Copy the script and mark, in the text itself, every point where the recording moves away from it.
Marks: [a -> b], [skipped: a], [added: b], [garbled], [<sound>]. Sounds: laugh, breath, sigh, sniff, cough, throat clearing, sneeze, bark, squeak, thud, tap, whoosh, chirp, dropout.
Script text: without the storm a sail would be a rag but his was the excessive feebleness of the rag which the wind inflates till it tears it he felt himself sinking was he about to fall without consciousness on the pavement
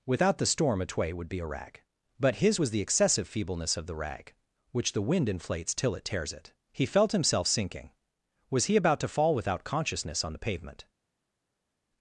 without the storm a [sail -> tway] would be a rag but his was the excessive feebleness of the rag which the wind inflates till it tears it he felt himself sinking was he about to fall without consciousness on the pavement